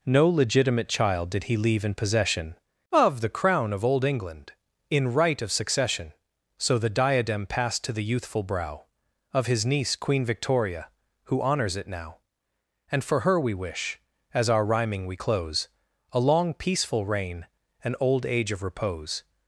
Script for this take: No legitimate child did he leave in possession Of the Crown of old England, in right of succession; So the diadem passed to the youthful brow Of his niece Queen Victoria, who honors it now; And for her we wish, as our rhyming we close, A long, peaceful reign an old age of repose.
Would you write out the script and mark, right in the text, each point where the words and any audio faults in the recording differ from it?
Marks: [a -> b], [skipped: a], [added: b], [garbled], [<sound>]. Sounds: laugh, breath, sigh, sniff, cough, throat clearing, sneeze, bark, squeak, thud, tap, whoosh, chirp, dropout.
No legitimate child did he leave in possession Of the Crown of old England, in right of succession; So the diadem passed to the youthful brow Of his niece Queen Victoria, who honors it now; And for her we wish, as our rhyming we close, A long, peaceful reign an old age of repose.